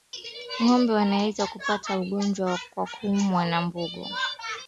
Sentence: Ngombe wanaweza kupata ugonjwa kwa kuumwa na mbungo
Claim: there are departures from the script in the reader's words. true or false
false